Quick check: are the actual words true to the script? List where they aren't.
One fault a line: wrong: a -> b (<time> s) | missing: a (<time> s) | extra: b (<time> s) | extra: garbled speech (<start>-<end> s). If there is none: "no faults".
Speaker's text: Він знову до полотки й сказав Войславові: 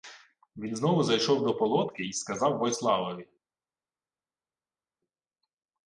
extra: зайшов (1.0 s)